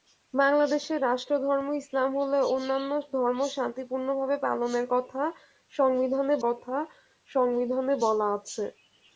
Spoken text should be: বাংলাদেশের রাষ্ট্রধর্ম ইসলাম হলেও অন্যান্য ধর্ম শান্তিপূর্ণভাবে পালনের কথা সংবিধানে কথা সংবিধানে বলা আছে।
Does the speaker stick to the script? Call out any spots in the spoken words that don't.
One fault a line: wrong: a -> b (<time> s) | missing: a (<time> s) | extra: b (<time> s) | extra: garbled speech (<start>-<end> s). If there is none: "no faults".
no faults